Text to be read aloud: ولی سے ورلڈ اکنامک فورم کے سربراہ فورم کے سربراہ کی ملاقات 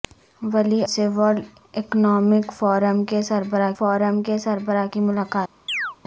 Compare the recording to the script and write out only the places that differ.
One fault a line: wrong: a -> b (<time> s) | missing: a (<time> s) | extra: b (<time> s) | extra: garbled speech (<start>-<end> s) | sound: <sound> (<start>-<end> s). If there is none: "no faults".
sound: chirp (5.7-6.0 s)